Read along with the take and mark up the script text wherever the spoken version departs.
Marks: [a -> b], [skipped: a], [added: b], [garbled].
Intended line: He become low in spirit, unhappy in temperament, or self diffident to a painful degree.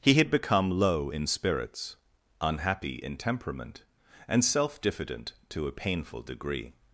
He [added: had] become low in [spirit, -> spirits] unhappy in temperament, [or -> and] self diffident to a painful degree.